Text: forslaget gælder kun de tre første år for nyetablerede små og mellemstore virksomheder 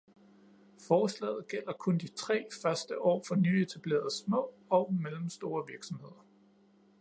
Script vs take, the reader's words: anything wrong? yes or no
no